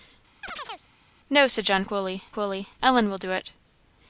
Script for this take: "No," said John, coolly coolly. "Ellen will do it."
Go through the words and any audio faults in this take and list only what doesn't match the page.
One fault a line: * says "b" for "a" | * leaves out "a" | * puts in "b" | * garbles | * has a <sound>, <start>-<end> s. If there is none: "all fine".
* has a chirp, 0.4-0.9 s